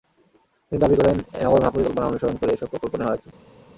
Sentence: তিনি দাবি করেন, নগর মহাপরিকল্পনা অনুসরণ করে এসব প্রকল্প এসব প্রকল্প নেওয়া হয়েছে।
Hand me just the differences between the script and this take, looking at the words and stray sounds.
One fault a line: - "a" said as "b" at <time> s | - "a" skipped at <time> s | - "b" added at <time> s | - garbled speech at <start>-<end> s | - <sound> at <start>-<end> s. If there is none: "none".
- "এসব প্রকল্প" skipped at 2.9 s